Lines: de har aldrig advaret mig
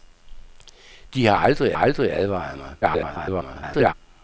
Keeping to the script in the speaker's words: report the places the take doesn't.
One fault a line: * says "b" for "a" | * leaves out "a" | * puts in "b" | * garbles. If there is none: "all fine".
* puts in "aldrig"
* garbles